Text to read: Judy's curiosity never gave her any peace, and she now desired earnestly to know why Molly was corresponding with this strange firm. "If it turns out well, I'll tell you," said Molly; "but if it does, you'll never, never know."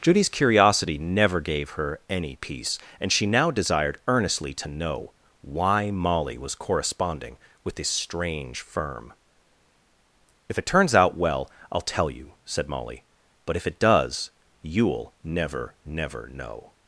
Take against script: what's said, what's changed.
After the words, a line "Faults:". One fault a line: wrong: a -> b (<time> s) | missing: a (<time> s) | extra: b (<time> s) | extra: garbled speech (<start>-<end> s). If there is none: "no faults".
Judy's curiosity never gave her any peace, and she now desired earnestly to know why Molly was corresponding with this strange firm. "If it turns out well, I'll tell you," said Molly; "but if it does, you'll never, never know."
Faults:
no faults